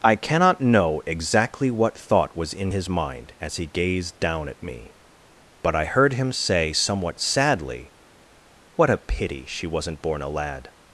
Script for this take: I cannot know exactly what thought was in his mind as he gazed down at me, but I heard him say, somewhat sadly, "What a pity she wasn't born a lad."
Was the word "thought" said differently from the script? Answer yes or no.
no